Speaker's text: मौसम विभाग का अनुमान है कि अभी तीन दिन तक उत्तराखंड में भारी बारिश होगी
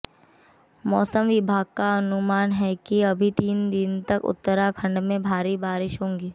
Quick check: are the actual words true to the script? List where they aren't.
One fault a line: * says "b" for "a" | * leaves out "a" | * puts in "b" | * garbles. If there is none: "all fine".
all fine